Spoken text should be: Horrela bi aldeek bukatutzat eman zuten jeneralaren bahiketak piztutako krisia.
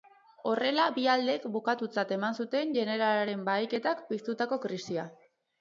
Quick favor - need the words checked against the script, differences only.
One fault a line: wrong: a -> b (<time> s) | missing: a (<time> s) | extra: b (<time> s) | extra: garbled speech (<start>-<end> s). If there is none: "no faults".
no faults